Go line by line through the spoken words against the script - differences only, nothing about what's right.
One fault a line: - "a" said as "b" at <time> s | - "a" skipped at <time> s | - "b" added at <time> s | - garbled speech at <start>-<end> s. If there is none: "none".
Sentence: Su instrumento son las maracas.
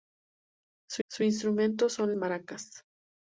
- "su" added at 1.1 s
- "las" skipped at 2.1 s